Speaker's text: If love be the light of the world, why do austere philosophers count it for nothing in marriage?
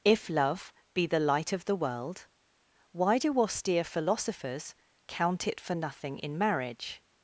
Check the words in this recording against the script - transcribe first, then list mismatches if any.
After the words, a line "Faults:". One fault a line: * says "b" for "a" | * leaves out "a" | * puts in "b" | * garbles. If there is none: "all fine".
If love be the light of the world, why do austere philosophers count it for nothing in marriage?
Faults:
all fine